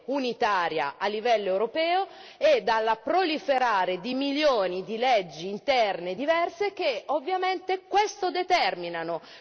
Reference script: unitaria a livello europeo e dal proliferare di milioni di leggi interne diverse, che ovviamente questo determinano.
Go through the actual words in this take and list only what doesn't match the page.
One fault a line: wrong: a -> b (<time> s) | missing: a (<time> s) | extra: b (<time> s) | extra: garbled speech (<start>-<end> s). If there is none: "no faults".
no faults